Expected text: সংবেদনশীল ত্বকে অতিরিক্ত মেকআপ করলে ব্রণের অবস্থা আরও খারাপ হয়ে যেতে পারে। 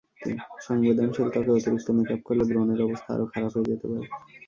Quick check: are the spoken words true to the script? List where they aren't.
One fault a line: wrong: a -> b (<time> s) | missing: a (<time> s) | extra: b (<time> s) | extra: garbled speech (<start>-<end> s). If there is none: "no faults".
no faults